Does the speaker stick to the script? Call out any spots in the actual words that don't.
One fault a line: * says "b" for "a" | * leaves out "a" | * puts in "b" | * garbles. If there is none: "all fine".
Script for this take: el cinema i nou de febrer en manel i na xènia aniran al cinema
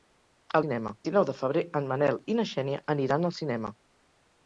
all fine